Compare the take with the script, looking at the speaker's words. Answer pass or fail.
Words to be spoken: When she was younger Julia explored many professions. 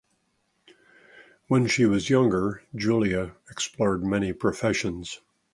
pass